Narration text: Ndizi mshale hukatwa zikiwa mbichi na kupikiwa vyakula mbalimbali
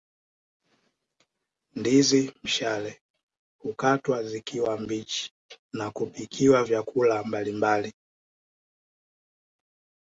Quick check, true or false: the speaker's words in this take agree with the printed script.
true